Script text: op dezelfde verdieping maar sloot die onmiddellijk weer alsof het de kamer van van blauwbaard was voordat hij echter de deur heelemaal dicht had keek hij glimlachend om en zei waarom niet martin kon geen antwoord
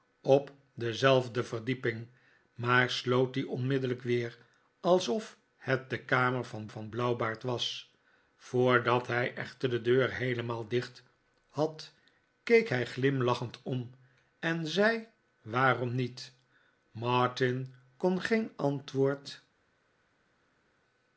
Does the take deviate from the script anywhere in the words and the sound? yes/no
no